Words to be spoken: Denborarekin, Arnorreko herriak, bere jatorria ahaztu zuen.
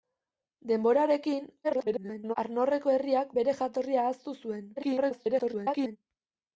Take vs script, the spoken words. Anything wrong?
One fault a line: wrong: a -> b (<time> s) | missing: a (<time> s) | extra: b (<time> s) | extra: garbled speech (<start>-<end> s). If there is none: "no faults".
extra: garbled speech (1.6-2.3 s)
extra: garbled speech (4.8-6.0 s)